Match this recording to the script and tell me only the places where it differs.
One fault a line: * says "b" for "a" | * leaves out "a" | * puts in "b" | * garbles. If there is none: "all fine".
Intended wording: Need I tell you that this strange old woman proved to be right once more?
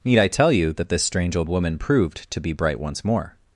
* says "bright" for "right"